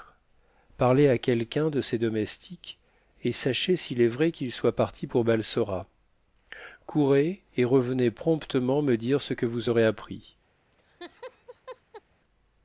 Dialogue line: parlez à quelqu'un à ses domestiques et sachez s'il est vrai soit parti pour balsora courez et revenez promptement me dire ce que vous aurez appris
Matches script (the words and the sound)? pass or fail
fail